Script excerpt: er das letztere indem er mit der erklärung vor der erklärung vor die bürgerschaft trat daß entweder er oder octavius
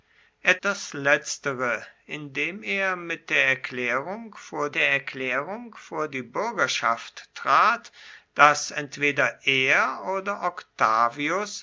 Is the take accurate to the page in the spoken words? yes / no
yes